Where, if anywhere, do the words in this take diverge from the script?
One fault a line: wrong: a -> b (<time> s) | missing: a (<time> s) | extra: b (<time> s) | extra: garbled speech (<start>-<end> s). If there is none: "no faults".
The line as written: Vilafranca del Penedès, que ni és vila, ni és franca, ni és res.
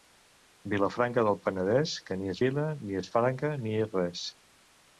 no faults